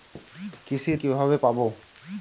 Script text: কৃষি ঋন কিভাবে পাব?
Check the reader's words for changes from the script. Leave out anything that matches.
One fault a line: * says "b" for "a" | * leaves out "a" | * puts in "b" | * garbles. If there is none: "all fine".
* leaves out "ঋন"